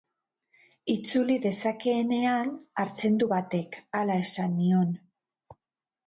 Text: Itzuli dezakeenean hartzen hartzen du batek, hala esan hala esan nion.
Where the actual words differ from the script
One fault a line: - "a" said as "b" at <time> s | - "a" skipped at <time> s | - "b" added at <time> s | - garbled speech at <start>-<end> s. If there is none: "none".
- "hartzen" skipped at 3.2 s
- "hala esan" skipped at 4.5 s